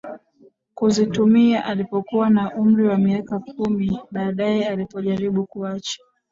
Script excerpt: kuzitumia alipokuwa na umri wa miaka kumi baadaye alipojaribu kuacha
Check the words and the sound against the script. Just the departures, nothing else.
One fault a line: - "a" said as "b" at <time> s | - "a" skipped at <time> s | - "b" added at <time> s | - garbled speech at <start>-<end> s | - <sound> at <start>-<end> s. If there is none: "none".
none